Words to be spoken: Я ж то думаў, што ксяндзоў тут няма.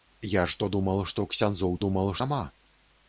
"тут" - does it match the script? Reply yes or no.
no